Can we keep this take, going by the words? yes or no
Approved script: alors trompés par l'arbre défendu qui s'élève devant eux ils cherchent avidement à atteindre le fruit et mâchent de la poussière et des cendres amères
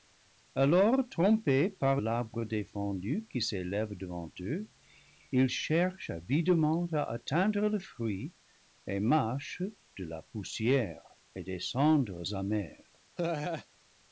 yes